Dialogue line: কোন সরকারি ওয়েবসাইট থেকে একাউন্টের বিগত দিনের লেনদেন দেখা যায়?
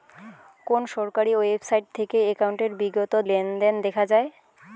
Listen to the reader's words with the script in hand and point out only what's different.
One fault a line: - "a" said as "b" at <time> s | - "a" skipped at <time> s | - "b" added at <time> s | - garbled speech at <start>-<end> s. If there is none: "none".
- "দিনের" skipped at 3.1 s